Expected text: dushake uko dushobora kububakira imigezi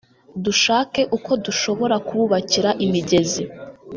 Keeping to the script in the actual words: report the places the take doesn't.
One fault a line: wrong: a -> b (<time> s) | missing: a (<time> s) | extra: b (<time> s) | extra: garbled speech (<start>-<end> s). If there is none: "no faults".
no faults